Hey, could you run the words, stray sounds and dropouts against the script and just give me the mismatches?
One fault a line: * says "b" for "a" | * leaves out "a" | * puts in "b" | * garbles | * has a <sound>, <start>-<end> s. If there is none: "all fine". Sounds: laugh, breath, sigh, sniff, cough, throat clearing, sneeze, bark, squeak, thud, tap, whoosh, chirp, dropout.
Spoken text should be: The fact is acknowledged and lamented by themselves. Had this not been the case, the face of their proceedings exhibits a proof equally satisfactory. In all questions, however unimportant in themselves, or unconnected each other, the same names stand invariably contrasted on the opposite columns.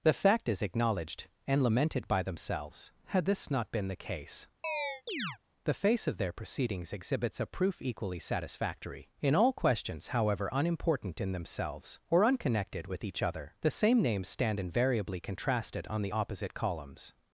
* has a chirp, 4.6-5.4 s
* puts in "with"